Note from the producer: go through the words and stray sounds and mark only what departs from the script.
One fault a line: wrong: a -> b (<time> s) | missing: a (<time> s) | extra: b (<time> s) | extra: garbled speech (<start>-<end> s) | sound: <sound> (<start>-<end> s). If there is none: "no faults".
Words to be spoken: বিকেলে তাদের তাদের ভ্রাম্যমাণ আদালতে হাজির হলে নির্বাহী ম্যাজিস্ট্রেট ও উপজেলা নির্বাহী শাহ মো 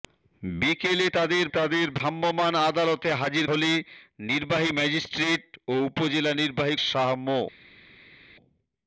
no faults